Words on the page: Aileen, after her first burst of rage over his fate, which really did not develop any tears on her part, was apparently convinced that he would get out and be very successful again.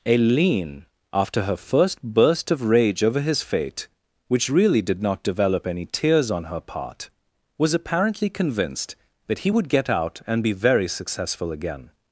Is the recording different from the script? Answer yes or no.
no